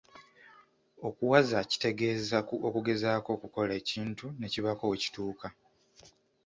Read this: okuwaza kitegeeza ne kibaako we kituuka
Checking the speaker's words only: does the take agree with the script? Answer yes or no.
no